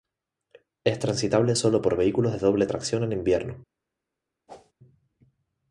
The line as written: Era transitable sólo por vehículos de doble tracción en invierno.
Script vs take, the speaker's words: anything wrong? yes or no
yes